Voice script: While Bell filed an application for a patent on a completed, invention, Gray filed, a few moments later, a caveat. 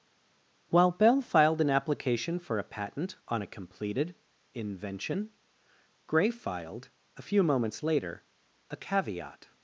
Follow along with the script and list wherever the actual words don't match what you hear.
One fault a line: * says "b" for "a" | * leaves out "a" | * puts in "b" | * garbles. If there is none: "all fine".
all fine